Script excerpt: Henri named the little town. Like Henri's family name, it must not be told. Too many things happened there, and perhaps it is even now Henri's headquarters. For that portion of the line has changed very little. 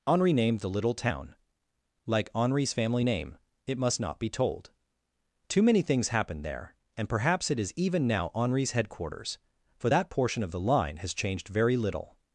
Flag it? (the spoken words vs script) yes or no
no